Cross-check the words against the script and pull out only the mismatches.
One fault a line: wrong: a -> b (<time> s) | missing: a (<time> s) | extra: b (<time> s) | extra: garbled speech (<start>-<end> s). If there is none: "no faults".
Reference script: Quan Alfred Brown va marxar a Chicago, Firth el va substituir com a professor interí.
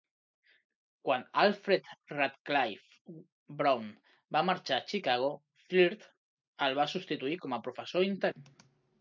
extra: Radcliffe (2.1 s)